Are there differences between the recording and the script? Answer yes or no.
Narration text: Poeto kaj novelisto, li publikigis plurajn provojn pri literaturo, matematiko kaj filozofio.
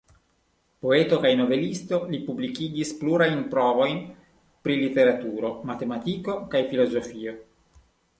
no